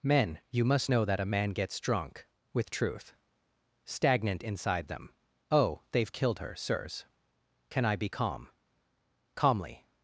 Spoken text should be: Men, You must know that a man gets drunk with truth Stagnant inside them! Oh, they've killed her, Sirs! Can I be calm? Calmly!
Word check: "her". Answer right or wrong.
right